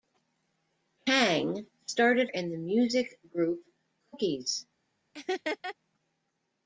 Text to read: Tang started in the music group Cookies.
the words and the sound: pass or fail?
fail